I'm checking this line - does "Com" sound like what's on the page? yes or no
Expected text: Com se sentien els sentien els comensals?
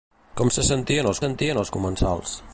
yes